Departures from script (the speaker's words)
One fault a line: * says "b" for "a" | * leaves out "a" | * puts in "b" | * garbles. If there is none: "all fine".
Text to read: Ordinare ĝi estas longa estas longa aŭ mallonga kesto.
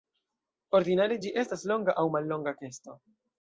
* leaves out "estas longa"